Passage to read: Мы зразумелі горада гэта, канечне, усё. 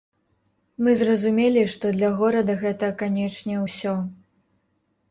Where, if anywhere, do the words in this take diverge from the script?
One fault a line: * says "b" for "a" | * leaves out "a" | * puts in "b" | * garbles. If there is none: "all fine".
* puts in "што для"